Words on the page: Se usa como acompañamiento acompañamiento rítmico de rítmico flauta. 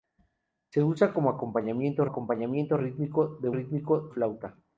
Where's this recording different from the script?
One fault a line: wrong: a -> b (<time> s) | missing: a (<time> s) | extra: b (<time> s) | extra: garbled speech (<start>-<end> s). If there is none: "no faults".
no faults